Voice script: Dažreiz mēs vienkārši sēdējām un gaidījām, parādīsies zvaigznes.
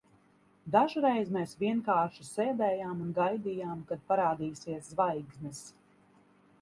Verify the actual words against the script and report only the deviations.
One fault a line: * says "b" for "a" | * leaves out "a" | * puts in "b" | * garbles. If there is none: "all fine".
* puts in "kad"